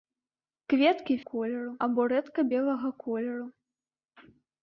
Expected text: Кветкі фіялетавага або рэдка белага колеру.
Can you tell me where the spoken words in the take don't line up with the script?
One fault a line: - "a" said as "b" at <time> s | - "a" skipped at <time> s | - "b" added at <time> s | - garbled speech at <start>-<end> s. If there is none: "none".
- "фіялетавага" said as "колеру" at 1.3 s